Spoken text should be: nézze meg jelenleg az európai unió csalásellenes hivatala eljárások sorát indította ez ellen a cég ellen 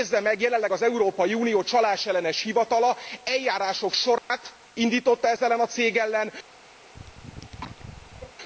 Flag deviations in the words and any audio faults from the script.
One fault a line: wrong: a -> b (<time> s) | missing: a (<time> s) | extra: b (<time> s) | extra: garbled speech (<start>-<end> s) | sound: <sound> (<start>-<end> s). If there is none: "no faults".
sound: dropout (4.2-4.3 s)
sound: cough (6.8-8.4 s)